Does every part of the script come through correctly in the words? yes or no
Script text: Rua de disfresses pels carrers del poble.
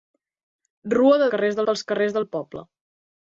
no